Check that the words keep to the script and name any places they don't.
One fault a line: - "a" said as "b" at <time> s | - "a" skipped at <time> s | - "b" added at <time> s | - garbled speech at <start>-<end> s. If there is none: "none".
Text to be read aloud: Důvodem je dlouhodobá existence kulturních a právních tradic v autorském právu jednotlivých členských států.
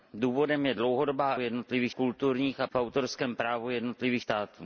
- "existence" said as "jednotlivých" at 1.4 s
- "právních tradic" skipped at 2.7 s
- "členských" skipped at 4.2 s